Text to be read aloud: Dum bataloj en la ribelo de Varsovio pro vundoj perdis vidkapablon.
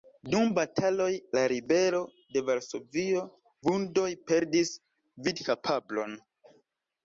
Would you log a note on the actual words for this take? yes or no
yes